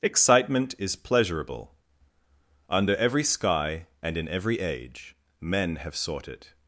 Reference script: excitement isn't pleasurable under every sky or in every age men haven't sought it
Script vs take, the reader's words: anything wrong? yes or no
yes